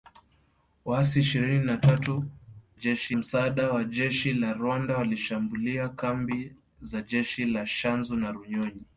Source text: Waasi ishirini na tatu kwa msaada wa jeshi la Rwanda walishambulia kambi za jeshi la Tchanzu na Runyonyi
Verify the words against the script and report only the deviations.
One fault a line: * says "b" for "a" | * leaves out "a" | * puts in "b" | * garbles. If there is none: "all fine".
* says "jeshi" for "kwa"